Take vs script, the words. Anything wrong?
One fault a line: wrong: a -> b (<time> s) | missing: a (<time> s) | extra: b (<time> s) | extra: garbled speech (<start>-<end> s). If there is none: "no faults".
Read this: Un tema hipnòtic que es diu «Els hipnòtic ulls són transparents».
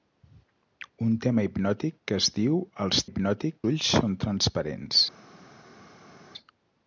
no faults